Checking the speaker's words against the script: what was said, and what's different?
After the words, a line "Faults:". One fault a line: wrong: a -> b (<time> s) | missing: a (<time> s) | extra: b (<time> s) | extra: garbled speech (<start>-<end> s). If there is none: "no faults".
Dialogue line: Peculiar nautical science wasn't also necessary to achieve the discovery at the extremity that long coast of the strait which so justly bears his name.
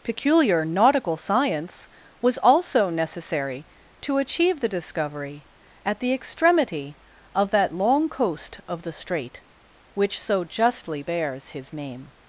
Peculiar nautical science was also necessary to achieve the discovery at the extremity of that long coast of the strait which so justly bears his name.
Faults:
wrong: wasn't -> was (2.2 s)
extra: of (7.3 s)